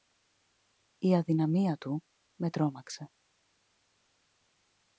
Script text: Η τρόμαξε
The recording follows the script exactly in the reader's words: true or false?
false